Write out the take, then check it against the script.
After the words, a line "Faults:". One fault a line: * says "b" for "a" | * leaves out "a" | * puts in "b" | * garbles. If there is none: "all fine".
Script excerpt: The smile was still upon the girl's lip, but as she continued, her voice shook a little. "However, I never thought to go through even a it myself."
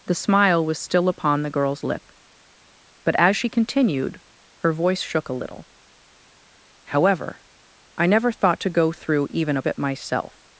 The smile was still upon the girl's lip, but as she continued, her voice shook a little. "However, I never thought to go through even a it myself."
Faults:
all fine